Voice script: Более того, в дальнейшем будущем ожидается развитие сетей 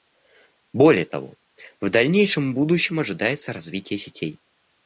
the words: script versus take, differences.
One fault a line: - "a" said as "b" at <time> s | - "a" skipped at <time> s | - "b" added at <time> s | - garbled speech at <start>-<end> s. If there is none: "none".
none